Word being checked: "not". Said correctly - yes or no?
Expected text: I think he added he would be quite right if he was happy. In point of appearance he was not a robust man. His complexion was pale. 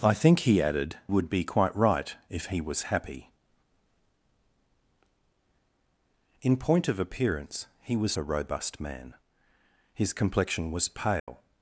no